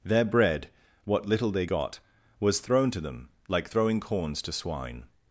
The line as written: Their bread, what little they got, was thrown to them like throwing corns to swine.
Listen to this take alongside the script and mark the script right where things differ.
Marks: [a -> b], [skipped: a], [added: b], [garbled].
Their bread, what little they got, was thrown to them like throwing corns to swine.